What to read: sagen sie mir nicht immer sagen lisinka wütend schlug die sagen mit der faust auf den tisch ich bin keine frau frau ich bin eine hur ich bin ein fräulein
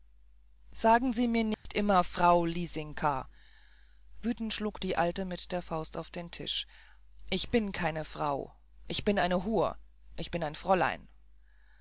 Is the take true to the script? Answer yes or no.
no